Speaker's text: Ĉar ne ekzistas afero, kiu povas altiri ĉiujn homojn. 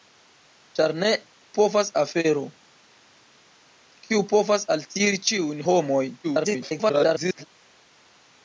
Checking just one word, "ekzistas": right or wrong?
wrong